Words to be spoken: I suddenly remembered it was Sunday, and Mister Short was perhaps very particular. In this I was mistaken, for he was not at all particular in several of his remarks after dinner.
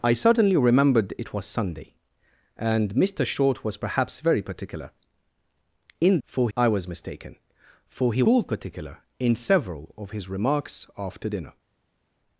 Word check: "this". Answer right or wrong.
wrong